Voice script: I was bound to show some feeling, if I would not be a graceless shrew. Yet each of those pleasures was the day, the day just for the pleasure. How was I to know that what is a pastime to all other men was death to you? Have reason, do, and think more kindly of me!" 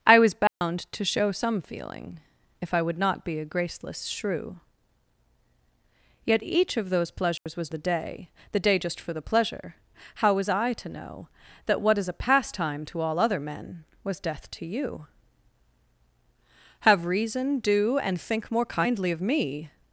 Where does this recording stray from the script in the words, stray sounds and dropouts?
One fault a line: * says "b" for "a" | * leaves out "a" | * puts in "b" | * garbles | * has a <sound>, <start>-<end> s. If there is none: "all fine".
* has a dropout, 0.5-0.6 s
* has a dropout, 7.4-7.5 s